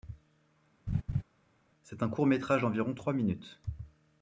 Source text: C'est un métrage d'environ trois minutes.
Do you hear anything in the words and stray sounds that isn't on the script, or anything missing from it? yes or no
yes